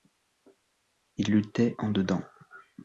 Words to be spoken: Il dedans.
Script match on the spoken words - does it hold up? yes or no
no